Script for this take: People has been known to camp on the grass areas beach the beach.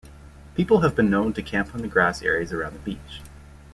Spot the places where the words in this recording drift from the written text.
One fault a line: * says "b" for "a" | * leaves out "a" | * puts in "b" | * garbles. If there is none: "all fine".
* says "have" for "has"
* says "around" for "beach"